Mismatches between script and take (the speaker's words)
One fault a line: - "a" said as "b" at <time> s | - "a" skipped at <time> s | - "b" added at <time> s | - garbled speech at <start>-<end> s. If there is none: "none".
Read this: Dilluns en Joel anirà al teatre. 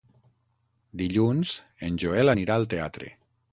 none